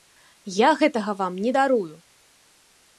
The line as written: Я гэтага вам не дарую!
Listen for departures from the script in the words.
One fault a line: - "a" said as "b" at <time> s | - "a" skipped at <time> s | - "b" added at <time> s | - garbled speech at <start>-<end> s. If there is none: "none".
none